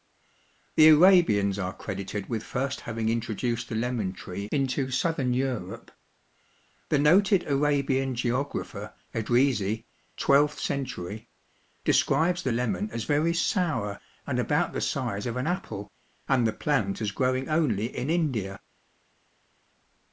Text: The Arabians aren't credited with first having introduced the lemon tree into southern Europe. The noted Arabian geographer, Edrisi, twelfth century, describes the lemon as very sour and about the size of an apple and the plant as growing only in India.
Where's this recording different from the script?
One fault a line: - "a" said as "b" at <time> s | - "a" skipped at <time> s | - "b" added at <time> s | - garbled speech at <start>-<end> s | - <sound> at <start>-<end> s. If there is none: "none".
- "aren't" said as "are" at 1.6 s